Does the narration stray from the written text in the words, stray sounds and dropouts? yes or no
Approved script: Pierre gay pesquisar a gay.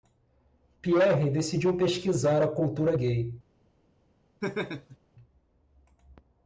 yes